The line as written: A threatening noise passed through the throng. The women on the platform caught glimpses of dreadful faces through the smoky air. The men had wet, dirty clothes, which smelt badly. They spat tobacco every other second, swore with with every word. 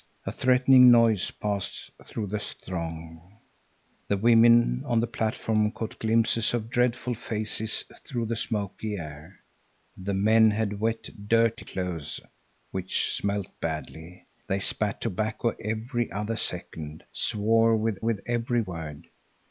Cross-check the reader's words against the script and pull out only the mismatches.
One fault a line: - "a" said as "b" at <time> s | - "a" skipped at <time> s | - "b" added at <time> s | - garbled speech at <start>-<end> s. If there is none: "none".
none